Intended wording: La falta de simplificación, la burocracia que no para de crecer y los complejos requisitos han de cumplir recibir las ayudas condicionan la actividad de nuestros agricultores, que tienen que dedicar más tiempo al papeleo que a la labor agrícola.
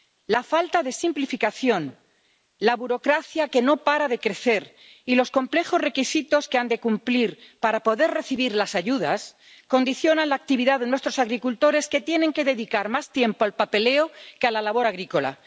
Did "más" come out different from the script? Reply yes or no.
no